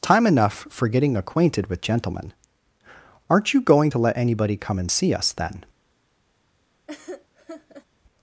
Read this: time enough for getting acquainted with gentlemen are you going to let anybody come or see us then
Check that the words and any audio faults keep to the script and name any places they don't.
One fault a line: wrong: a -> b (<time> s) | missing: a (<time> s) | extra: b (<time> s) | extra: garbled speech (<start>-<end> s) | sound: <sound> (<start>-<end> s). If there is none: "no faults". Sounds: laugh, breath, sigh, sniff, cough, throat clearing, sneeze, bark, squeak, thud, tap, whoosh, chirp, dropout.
wrong: are -> aren't (3.3 s)
wrong: or -> and (4.8 s)
sound: laugh (6.9-7.9 s)